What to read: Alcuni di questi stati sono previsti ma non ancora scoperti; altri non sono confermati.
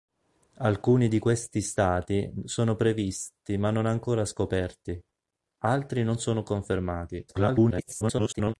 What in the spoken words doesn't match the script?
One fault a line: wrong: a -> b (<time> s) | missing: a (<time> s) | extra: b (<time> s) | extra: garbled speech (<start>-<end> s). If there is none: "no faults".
extra: garbled speech (7.3-8.5 s)